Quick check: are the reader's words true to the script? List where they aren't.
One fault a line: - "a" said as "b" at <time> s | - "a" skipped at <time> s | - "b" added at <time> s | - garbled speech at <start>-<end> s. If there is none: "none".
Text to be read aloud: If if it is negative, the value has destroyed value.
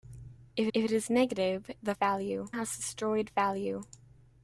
none